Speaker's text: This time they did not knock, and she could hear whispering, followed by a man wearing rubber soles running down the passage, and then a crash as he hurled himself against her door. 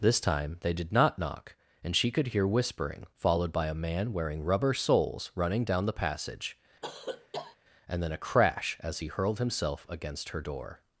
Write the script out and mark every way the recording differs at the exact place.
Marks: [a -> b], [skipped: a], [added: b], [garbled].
This time they did not knock, and she could hear whispering, followed by a man wearing rubber soles running down the passage, and then a crash as he hurled himself against her door.